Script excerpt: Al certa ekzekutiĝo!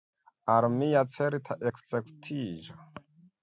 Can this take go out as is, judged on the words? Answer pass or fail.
fail